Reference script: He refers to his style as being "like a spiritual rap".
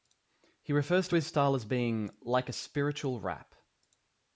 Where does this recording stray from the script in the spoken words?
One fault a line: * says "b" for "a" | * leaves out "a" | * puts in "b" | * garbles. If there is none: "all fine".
all fine